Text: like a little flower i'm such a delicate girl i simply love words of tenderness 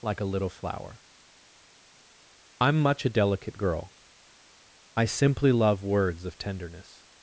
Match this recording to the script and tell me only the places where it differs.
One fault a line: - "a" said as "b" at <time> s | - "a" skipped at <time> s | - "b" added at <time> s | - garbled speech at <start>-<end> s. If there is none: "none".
- "such" said as "much" at 2.8 s